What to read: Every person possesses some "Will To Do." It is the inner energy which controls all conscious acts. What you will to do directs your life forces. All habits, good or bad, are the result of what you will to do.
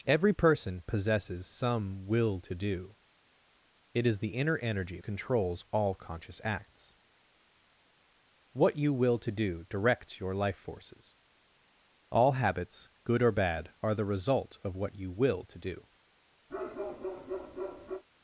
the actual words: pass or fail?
fail